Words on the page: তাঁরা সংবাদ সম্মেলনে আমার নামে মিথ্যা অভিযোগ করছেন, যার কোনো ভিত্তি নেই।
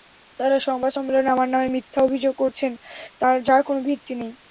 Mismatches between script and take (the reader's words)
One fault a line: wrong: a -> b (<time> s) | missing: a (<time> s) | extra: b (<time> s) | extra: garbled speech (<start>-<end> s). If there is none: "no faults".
no faults